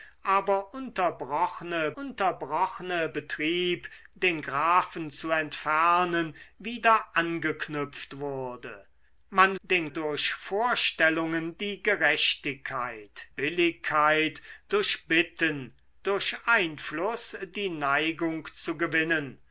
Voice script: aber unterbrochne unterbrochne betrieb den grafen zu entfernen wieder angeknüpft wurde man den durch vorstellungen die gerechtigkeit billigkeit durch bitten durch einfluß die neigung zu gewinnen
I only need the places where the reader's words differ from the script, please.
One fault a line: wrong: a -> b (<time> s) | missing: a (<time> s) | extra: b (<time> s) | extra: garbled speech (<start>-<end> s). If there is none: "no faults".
no faults